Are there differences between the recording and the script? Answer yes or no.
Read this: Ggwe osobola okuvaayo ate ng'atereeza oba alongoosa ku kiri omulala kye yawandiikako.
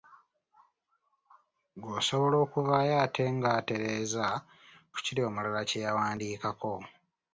yes